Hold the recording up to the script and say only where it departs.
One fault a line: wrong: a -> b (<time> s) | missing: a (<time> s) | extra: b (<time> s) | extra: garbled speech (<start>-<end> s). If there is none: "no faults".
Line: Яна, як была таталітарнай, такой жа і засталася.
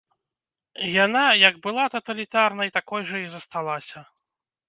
no faults